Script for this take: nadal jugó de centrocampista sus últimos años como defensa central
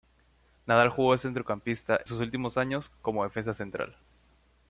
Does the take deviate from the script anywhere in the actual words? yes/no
no